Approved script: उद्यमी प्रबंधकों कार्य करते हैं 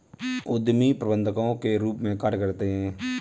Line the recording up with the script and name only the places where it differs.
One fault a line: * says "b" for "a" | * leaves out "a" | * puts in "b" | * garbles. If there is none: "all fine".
* puts in "के रूप में"